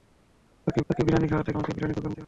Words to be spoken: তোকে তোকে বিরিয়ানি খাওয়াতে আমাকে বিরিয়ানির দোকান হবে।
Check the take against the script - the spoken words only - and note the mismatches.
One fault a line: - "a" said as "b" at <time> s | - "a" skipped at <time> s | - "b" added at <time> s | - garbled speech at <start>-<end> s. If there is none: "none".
none